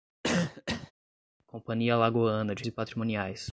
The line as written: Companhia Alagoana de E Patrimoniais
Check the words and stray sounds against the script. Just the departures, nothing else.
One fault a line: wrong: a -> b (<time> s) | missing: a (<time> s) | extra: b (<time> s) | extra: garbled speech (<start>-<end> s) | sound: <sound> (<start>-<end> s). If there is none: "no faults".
sound: cough (0.2-0.9 s)